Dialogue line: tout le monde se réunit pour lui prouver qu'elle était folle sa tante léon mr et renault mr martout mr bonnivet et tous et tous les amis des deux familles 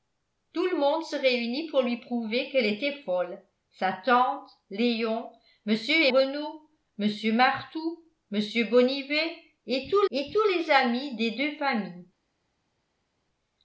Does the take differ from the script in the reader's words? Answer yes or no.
no